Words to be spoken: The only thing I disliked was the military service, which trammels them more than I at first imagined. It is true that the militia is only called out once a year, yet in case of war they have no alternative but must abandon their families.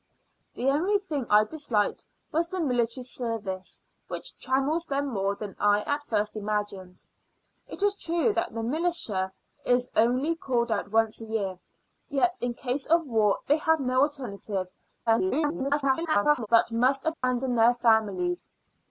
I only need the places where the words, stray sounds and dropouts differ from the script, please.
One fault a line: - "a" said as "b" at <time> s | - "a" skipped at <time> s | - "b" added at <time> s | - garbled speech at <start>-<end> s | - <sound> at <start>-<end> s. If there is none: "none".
- garbled speech at 15.1-16.5 s
- dropout at 17.1-17.2 s